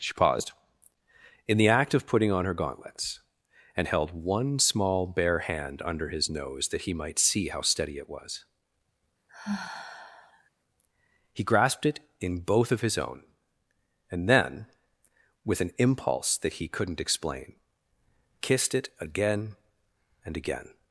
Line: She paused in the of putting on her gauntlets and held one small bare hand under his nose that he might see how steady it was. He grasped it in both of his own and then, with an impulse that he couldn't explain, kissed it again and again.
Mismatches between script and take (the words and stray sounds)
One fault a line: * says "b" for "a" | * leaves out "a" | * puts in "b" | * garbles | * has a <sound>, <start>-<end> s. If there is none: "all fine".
* puts in "act"
* has a sigh, 9.3-10.5 s